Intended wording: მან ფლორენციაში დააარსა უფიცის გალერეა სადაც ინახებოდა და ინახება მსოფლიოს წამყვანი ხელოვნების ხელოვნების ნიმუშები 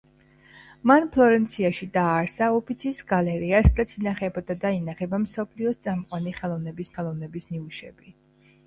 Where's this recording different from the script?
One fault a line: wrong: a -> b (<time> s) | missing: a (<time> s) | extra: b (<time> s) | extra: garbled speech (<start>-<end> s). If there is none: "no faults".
no faults